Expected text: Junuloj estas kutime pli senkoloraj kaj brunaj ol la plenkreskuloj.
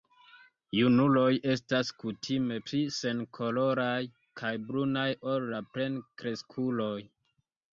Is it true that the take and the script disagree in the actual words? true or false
false